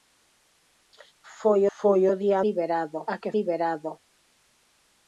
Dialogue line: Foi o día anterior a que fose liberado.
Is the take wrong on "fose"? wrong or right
wrong